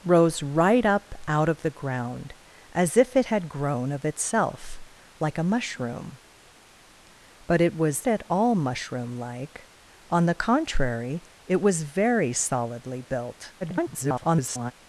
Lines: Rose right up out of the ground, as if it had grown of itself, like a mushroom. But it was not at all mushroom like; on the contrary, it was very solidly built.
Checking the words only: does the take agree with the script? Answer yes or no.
no